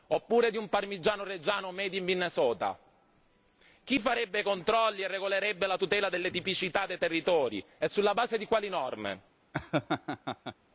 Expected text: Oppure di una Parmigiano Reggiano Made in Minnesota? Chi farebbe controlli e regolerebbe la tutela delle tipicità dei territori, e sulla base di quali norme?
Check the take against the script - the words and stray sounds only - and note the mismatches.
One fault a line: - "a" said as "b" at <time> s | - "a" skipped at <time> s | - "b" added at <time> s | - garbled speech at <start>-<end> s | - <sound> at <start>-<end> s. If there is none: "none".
- "una" said as "un" at 0.6 s
- laugh at 9.5-10.6 s